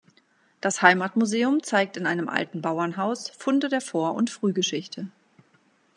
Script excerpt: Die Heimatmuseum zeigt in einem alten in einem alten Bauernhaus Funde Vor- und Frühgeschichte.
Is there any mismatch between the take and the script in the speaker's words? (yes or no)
yes